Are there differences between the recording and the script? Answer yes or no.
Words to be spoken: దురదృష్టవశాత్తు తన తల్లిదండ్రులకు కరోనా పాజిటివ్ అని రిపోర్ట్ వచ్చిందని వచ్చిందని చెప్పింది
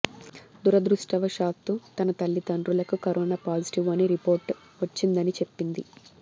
yes